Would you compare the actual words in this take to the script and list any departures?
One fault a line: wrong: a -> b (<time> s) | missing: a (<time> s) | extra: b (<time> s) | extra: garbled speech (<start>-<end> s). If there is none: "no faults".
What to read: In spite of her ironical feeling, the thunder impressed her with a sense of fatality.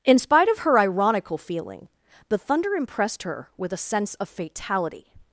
no faults